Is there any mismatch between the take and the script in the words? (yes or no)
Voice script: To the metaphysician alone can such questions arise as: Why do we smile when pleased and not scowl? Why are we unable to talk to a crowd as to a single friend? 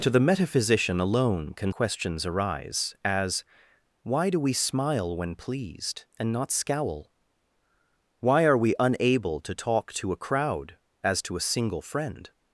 yes